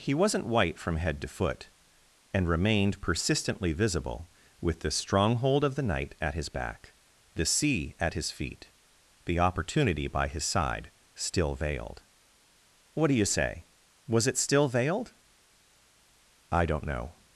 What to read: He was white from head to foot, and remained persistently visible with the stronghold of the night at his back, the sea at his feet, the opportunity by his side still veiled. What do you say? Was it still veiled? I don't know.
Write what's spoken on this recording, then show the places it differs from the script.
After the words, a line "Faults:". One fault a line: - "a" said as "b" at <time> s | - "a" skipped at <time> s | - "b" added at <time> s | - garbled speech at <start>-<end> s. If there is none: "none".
He wasn't white from head to foot, and remained persistently visible with the stronghold of the night at his back, the sea at his feet, the opportunity by his side still veiled. What do you say? Was it still veiled? I don't know.
Faults:
- "was" said as "wasn't" at 0.1 s